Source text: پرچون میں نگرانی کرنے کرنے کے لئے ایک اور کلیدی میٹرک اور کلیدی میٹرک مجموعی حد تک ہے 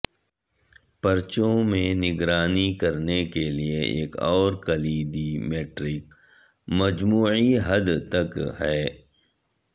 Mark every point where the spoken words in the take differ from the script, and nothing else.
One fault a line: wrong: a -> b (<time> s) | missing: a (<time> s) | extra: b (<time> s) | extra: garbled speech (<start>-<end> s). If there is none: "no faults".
missing: کرنے (3.2 s)
missing: اور کلیدی میٹرک (6.0 s)